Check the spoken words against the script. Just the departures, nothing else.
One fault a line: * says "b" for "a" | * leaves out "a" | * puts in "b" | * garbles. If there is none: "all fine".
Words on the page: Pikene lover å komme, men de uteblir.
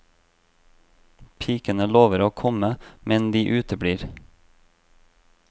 all fine